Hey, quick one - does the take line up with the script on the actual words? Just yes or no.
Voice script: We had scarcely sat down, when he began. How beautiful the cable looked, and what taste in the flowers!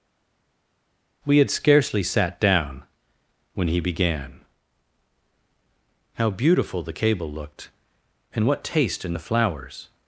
yes